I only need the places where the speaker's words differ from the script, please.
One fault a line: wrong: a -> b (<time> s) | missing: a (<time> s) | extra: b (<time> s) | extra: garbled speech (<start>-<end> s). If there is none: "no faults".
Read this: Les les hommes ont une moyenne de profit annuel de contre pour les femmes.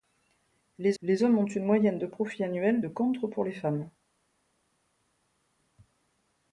no faults